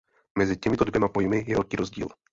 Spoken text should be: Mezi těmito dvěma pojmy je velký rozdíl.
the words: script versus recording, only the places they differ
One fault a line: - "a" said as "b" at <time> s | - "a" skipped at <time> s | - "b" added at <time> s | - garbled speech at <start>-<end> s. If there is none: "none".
none